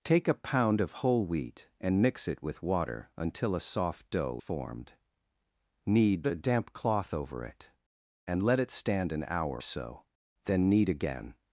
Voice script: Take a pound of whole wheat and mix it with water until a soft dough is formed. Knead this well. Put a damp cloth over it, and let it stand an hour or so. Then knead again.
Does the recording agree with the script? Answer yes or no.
no